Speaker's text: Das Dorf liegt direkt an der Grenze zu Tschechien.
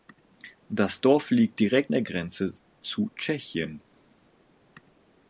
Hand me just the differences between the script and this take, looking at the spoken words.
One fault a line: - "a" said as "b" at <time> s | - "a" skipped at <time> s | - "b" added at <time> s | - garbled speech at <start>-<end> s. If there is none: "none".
- "an" skipped at 1.9 s